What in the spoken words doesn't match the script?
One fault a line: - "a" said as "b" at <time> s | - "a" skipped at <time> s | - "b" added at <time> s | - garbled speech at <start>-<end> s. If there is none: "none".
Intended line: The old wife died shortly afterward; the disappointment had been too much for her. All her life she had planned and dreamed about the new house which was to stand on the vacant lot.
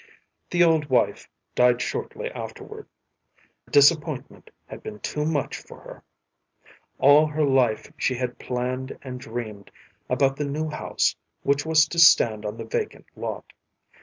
- "the" skipped at 2.9 s